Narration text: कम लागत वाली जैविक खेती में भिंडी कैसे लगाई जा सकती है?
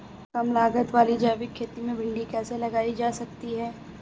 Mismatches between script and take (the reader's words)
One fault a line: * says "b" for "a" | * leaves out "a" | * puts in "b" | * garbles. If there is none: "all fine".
all fine